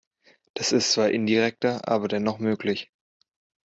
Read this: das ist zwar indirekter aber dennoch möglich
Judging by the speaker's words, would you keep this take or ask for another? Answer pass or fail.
pass